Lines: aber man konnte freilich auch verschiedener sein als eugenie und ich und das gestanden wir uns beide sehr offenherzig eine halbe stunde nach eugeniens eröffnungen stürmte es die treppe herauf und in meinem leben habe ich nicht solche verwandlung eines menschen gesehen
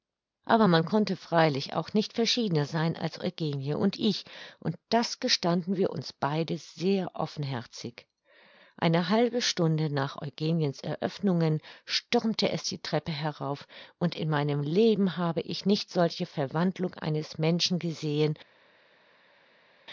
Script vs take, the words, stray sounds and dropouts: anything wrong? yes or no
yes